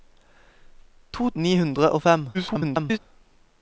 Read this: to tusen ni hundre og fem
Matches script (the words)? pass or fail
fail